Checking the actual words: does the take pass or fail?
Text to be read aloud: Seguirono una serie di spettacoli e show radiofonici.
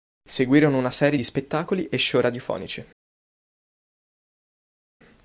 pass